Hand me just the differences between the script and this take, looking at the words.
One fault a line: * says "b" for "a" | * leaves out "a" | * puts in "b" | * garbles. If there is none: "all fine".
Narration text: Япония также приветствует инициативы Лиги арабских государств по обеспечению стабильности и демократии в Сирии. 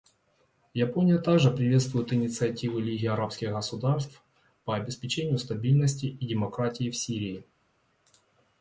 all fine